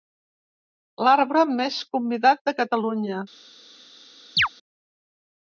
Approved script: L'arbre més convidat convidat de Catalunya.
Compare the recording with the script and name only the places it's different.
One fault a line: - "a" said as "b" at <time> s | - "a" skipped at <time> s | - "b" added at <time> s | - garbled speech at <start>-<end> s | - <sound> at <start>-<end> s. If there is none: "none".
- "convidat" skipped at 2.4 s
- chirp at 4.4-4.5 s